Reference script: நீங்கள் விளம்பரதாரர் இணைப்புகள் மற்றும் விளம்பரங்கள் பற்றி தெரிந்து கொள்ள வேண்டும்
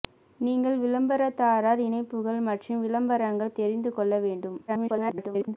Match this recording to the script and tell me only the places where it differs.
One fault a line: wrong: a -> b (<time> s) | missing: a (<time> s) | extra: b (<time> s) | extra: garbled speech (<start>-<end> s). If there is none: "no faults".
missing: பற்றி (3.6 s)
extra: garbled speech (4.7-5.6 s)